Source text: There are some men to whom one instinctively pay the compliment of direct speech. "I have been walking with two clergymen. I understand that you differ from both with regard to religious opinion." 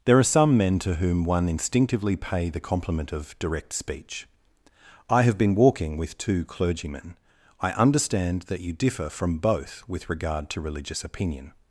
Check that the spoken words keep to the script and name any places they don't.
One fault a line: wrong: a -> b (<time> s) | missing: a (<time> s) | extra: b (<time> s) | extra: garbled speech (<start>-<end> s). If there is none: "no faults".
no faults